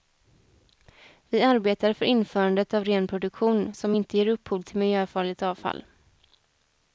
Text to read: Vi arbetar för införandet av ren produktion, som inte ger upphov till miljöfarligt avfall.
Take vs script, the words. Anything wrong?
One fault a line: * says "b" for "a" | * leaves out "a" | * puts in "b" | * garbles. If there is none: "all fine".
all fine